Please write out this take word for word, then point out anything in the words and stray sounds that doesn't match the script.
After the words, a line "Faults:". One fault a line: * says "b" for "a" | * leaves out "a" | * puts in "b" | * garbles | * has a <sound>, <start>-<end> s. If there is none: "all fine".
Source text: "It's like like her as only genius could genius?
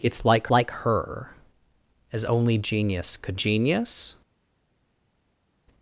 "It's like like her as only genius could genius?
Faults:
all fine